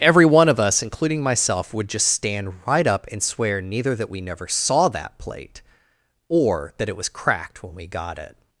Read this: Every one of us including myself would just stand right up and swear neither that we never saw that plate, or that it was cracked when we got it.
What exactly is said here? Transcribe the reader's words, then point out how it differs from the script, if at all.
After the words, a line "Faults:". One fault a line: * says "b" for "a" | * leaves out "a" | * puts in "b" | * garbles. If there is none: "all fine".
Every one of us including myself would just stand right up and swear neither that we never saw that plate, or that it was cracked when we got it.
Faults:
all fine